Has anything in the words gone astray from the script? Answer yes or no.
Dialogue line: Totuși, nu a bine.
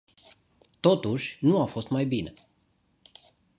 yes